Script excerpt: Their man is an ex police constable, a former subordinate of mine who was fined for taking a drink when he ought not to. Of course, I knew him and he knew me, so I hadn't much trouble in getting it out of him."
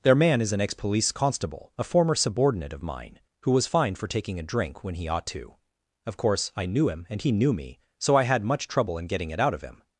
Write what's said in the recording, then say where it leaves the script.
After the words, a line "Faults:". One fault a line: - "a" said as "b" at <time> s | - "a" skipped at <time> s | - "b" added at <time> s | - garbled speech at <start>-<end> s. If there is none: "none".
Their man is an ex police constable, a former subordinate of mine who was fined for taking a drink when he ought to. Of course, I knew him and he knew me, so I had much trouble in getting it out of him."
Faults:
- "not" skipped at 5.3 s
- "hadn't" said as "had" at 8.2 s